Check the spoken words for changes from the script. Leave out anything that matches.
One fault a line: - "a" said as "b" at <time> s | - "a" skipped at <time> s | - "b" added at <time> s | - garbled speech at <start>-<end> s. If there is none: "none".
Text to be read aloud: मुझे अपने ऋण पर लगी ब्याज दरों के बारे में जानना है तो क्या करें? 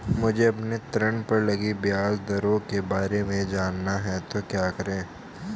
none